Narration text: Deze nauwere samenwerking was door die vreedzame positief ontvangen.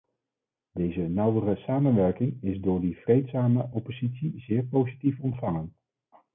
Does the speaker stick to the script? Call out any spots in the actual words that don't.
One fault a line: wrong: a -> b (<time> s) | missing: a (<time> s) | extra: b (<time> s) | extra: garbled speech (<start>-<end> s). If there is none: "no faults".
wrong: was -> is (2.4 s)
extra: oppositie zeer (3.7 s)